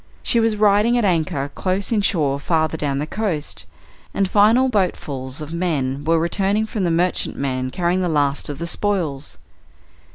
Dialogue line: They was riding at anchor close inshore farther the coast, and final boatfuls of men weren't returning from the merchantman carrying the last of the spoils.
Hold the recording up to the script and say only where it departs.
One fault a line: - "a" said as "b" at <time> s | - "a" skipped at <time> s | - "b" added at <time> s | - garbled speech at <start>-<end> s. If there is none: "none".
- "They" said as "She" at 0.2 s
- "down" added at 2.8 s
- "weren't" said as "were" at 6.1 s